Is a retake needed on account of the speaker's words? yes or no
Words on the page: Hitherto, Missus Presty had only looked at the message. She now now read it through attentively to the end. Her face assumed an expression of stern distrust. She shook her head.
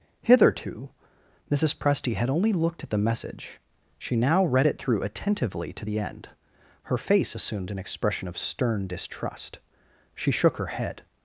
yes